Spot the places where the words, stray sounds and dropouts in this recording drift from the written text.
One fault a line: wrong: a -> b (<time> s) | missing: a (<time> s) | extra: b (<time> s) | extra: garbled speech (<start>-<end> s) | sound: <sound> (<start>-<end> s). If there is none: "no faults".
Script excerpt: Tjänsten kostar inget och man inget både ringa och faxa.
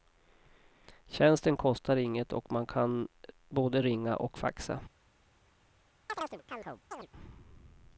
wrong: inget -> kan (2.6 s)
sound: chirp (6.1-7.1 s)